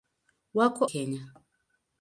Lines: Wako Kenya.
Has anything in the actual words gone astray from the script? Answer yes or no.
no